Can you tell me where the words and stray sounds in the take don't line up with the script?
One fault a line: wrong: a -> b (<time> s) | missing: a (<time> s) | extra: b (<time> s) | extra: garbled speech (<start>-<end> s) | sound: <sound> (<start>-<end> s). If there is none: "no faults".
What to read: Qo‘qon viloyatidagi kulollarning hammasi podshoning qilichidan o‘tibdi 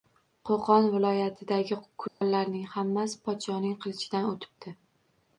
sound: dropout (2.1-2.2 s)